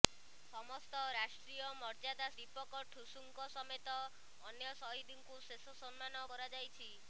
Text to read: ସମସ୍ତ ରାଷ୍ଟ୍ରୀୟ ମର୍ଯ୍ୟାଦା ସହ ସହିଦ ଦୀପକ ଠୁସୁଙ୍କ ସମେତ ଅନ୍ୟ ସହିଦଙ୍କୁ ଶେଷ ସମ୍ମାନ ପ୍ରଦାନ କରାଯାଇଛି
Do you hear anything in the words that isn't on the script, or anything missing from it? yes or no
yes